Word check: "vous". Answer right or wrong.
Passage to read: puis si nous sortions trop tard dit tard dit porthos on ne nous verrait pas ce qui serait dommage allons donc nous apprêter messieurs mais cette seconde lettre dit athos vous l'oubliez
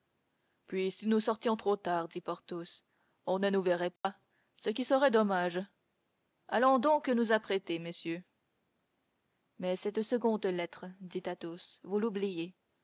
right